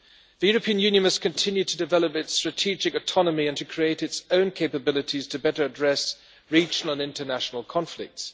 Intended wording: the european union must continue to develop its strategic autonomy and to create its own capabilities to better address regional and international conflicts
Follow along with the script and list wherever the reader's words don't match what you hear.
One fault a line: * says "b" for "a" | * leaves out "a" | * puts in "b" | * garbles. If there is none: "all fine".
all fine